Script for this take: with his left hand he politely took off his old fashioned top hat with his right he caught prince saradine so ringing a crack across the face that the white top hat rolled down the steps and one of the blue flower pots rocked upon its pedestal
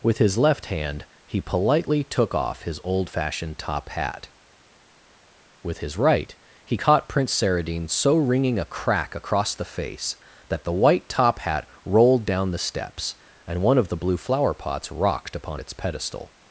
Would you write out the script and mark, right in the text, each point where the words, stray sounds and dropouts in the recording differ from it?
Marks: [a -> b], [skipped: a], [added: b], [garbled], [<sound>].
with his left hand he politely took off his old fashioned top hat with his right he caught prince saradine so ringing a crack across the face that the white top hat rolled down the steps and one of the blue flower pots rocked upon its pedestal